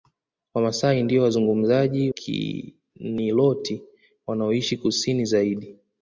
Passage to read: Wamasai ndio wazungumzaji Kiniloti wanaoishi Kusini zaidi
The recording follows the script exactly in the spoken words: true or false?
true